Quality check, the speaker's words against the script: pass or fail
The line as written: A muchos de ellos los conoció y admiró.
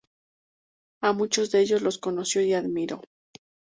pass